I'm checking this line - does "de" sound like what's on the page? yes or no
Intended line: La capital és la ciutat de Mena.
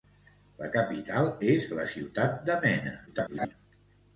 yes